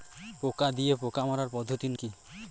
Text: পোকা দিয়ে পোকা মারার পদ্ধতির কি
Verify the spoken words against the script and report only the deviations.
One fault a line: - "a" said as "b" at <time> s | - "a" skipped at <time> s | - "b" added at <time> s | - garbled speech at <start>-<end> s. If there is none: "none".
none